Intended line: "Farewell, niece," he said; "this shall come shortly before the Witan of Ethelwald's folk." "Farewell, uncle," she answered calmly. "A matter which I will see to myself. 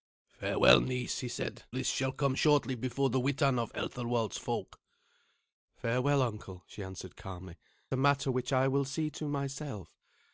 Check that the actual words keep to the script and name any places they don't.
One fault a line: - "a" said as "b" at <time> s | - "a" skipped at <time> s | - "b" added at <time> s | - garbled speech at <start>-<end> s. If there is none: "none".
none